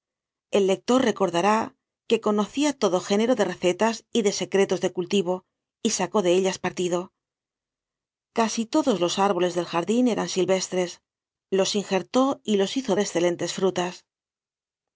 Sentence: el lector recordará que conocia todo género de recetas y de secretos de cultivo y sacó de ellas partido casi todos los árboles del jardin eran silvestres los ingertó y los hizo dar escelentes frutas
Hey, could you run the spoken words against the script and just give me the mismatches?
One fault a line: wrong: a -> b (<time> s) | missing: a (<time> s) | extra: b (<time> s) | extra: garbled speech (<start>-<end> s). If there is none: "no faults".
missing: dar (13.0 s)